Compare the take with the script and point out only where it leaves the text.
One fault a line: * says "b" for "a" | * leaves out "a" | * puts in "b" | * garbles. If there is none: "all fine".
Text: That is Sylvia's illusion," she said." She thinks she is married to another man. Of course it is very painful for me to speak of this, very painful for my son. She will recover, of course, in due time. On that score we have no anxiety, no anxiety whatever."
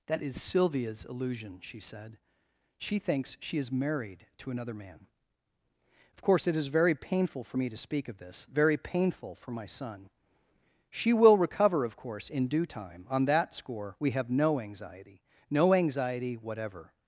all fine